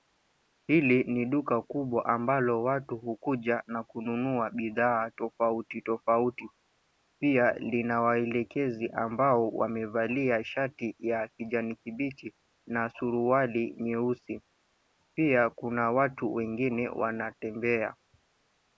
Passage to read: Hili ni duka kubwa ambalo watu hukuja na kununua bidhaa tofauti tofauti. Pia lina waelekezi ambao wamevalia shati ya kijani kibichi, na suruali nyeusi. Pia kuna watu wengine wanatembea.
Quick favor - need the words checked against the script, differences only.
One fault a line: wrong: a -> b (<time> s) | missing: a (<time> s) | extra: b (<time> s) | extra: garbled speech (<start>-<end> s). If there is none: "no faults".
no faults